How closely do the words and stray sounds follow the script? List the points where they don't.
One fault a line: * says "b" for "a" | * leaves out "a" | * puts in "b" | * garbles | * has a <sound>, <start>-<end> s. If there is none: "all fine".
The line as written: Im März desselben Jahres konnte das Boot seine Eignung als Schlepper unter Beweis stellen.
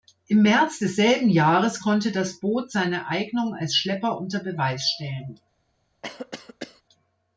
* has a cough, 6.0-6.8 s